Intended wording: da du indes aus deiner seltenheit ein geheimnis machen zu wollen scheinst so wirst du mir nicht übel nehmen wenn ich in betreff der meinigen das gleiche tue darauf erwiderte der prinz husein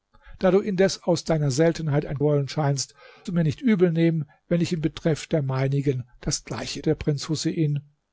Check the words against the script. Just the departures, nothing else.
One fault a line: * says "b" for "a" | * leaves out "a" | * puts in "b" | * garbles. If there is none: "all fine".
* leaves out "geheimnis machen zu"
* leaves out "so wirst"
* leaves out "tue darauf erwiderte"